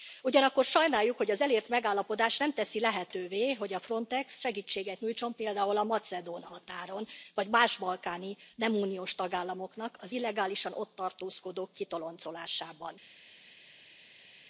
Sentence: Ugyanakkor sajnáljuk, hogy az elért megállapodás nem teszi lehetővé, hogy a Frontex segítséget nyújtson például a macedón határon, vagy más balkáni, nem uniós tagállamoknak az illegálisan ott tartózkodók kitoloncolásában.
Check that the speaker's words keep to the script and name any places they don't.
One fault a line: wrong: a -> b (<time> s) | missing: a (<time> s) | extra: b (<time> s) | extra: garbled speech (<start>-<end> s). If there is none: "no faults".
no faults